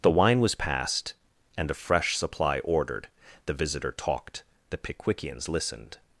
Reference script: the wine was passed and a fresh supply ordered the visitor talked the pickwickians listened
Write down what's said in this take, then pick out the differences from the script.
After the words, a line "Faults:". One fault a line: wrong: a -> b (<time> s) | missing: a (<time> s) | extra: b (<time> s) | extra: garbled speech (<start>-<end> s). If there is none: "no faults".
the wine was passed and a fresh supply ordered the visitor talked the pickwickians listened
Faults:
no faults